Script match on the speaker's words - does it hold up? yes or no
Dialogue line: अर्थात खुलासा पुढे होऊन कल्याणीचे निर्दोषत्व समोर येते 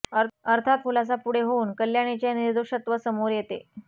yes